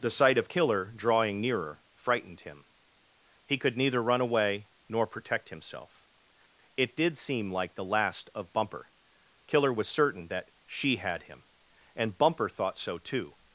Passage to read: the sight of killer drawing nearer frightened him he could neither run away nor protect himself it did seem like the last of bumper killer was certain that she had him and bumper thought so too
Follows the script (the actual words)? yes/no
yes